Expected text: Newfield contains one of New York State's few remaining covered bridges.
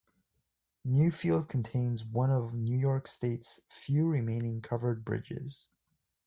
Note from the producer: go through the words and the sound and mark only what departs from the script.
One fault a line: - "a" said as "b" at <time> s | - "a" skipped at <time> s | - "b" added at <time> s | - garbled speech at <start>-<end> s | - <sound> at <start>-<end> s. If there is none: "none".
none